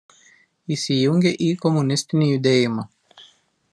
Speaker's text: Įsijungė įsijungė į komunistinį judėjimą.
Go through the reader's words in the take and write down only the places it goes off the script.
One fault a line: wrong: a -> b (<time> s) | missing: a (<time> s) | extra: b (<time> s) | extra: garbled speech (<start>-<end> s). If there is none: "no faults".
missing: įsijungė (1.3 s)